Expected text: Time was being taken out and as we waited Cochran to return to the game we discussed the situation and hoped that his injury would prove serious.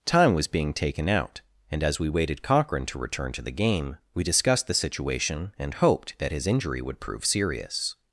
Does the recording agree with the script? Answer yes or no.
yes